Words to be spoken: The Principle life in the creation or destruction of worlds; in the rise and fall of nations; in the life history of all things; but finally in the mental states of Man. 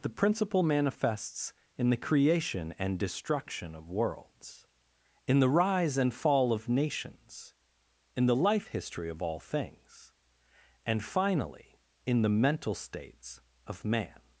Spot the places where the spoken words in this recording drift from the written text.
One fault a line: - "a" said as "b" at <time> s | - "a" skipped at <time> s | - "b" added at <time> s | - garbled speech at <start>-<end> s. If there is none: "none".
- "life" said as "manifests" at 0.6 s
- "or" said as "and" at 2.8 s
- "but" said as "and" at 10.9 s